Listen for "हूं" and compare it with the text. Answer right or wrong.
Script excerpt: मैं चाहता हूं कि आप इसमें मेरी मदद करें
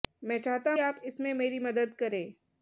wrong